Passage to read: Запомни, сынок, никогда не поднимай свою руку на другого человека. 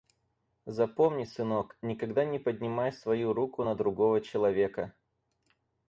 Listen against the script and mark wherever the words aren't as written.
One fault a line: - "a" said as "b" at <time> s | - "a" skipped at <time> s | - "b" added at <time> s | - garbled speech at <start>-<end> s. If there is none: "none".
none